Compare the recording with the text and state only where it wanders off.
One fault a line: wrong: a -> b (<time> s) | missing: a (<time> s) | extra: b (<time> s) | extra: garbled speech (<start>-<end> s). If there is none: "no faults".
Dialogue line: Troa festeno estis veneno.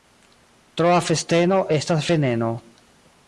wrong: estis -> estas (1.8 s)